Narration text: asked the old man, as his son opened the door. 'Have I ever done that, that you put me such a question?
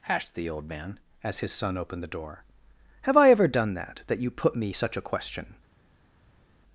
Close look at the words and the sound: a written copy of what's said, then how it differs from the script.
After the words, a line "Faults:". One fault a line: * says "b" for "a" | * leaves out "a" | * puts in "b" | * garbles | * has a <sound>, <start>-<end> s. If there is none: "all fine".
asked the old man, as his son opened the door. 'Have I ever done that, that you put me such a question?
Faults:
all fine